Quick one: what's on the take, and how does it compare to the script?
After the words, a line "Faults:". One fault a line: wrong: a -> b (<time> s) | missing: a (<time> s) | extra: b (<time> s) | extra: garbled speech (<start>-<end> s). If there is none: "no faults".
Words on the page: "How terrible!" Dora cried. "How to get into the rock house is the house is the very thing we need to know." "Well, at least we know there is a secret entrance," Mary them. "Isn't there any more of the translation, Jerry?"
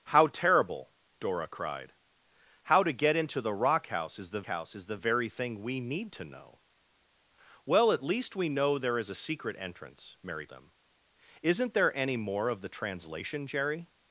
"How terrible!" Dora cried. "How to get into the rock house is the house is the very thing we need to know." "Well, at least we know there is a secret entrance," Mary them. "Isn't there any more of the translation, Jerry?"
Faults:
no faults